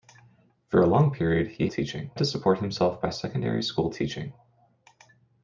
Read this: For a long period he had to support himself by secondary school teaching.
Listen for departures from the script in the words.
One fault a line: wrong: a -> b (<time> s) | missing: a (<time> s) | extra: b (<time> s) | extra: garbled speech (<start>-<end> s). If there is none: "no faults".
wrong: had -> teaching (1.7 s)